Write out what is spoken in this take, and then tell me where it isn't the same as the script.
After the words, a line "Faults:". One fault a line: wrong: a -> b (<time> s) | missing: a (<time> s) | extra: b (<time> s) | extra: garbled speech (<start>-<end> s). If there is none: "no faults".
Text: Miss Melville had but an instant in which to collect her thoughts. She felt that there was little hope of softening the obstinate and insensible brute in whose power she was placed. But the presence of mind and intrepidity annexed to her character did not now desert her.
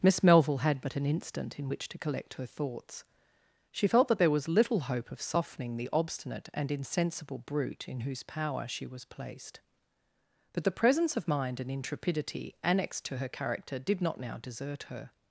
Miss Melville had but an instant in which to collect her thoughts. She felt that there was little hope of softening the obstinate and insensible brute in whose power she was placed. But the presence of mind and intrepidity annexed to her character did not now desert her.
Faults:
no faults